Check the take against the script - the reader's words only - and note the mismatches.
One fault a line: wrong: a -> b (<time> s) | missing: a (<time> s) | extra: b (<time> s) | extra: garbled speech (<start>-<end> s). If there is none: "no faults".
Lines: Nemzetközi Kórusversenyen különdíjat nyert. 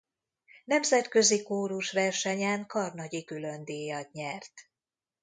extra: karnagyi (2.7 s)